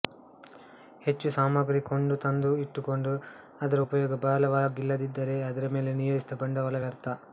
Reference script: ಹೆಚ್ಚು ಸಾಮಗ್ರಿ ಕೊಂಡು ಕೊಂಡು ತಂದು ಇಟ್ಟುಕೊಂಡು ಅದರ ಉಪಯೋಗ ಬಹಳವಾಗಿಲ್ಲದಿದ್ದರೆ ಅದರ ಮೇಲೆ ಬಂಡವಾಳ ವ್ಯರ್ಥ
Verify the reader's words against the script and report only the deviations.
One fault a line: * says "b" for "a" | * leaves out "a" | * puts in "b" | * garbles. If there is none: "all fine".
* leaves out "ಕೊಂಡು"
* puts in "ನಿಯೋಜಿಸಿದ"